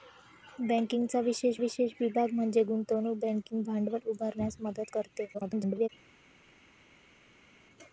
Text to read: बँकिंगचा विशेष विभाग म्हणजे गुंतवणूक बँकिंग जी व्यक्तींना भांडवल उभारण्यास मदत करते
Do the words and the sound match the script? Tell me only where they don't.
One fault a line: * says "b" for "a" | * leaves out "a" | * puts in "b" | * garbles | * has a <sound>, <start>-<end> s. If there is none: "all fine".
* puts in "विशेष"
* leaves out "जी व्यक्तींना"
* garbles